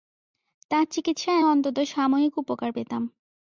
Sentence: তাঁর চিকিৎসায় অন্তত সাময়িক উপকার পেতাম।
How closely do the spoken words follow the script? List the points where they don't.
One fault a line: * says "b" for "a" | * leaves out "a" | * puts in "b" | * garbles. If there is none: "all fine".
all fine